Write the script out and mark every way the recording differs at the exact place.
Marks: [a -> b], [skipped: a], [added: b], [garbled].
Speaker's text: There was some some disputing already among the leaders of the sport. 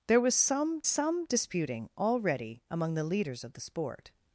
There was some some disputing already among the leaders of the sport.